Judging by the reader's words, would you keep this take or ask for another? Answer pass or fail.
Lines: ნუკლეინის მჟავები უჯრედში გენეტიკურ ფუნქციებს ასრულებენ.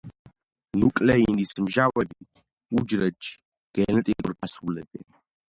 fail